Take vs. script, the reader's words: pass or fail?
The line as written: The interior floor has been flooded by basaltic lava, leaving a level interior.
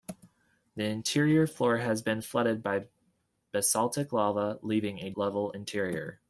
pass